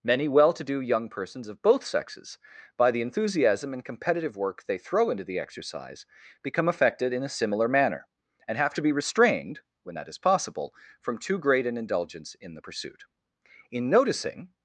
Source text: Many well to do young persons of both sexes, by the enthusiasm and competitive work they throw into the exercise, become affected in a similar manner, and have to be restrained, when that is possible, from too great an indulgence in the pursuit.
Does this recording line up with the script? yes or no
no